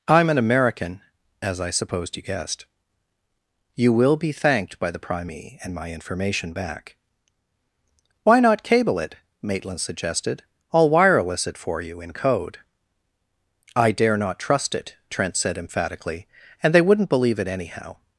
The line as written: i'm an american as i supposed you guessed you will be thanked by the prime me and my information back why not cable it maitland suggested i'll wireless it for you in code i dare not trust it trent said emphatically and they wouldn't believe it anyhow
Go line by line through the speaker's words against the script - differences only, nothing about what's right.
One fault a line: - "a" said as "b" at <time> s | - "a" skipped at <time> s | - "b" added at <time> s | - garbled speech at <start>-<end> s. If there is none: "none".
none